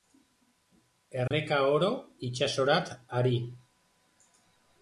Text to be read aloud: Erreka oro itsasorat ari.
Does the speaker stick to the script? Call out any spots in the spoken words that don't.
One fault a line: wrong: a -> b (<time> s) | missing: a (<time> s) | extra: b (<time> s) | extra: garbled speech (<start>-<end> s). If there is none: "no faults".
no faults